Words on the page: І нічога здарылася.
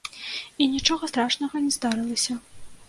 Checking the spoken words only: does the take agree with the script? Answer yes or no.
no